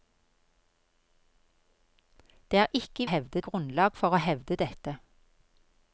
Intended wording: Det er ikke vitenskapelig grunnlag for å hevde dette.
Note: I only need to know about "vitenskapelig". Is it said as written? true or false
false